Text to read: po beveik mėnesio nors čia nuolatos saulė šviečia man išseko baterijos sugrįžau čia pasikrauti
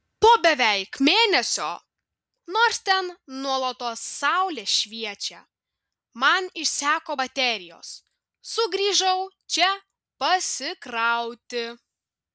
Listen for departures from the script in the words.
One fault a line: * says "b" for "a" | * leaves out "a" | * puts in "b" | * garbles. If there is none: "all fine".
* says "ten" for "čia"